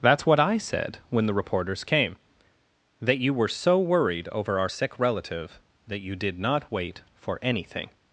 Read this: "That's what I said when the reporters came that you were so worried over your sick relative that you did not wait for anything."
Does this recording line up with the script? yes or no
no